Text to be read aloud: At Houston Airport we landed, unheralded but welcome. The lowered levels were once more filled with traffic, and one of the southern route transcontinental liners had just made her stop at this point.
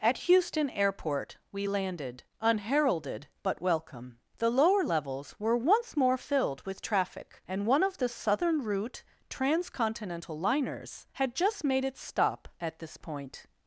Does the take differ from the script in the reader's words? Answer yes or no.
yes